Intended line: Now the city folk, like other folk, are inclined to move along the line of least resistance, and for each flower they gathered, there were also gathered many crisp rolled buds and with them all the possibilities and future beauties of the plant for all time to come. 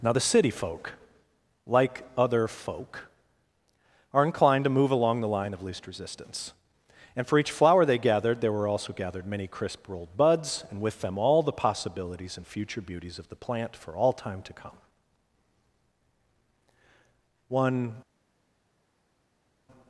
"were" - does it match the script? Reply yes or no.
yes